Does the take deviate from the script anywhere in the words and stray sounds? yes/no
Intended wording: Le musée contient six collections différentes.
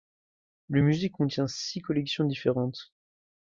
no